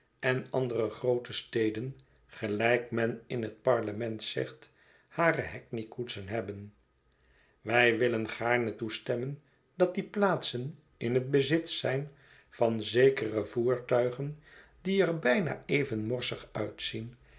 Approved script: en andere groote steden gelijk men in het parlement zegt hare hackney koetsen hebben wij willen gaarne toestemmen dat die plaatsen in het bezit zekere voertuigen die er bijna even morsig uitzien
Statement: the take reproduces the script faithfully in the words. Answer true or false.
false